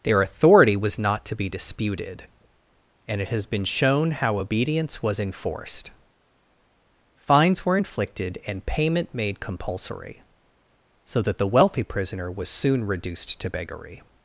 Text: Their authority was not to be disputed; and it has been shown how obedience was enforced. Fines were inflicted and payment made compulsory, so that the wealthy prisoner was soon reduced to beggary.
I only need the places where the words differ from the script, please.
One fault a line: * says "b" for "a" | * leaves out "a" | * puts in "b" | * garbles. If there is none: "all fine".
all fine